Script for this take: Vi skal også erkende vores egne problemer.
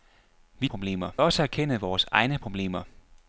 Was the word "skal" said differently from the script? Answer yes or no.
yes